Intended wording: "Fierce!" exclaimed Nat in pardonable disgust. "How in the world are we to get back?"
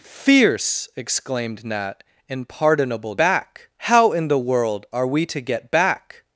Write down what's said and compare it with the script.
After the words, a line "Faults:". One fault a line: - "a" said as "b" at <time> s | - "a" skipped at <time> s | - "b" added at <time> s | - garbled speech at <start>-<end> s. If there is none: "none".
"Fierce!" exclaimed Nat in pardonable back. "How in the world are we to get back?"
Faults:
- "disgust" said as "back" at 3.2 s